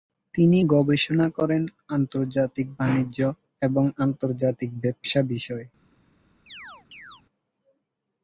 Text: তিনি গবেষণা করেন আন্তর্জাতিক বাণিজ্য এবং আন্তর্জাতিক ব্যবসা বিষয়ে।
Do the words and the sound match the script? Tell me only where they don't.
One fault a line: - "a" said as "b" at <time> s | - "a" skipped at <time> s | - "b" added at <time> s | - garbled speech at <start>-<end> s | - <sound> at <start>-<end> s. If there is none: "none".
- chirp at 6.5-7.2 s